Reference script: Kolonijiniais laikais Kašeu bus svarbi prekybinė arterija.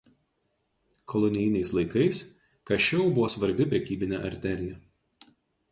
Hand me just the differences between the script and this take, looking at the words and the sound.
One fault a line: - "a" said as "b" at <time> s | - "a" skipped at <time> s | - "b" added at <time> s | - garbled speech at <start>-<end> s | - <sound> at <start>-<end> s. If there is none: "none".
- "bus" said as "buvo" at 3.2 s